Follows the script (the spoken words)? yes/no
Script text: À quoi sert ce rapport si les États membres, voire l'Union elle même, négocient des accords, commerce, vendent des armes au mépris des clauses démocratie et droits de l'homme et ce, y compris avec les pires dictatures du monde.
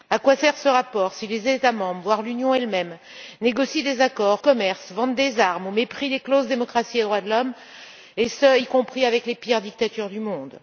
yes